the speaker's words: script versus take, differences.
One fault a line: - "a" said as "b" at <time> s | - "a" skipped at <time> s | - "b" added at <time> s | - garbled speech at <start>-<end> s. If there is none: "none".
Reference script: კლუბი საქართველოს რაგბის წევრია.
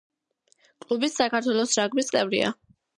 none